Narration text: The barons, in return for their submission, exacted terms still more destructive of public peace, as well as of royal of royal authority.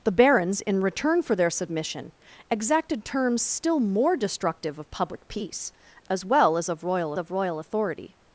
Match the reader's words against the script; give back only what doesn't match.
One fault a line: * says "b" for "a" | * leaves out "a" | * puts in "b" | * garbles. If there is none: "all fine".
all fine